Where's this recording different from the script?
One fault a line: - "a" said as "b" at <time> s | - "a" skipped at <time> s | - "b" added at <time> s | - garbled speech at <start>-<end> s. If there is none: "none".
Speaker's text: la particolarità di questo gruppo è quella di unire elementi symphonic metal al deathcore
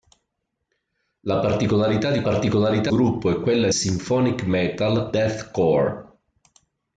- "questo" said as "particolarità" at 2.2 s
- "di unire elementi" skipped at 3.7 s
- "al" skipped at 5.1 s